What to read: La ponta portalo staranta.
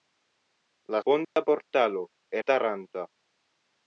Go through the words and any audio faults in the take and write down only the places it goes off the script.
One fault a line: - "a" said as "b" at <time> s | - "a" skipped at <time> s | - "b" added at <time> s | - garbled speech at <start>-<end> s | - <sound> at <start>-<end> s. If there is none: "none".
- dropout at 1.2-1.4 s